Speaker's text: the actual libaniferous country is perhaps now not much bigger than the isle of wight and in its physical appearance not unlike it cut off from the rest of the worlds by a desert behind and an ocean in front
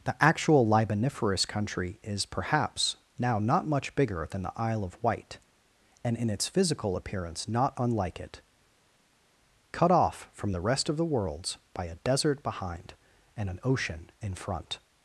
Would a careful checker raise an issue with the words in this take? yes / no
no